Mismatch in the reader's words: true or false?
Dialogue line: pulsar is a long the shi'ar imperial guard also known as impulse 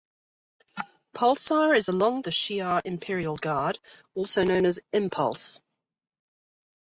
false